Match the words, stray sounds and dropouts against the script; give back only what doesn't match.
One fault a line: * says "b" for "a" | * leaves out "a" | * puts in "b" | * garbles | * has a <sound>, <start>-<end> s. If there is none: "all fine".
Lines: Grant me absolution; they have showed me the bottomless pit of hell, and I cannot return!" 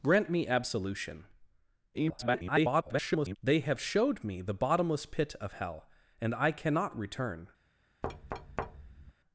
* garbles
* has a thud, 8.0-9.1 s